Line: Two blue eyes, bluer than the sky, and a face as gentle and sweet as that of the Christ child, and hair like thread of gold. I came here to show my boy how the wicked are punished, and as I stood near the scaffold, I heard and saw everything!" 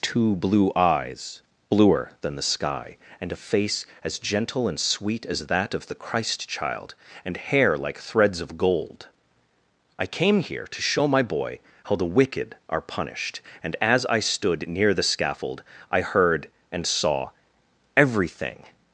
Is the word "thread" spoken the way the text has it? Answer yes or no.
no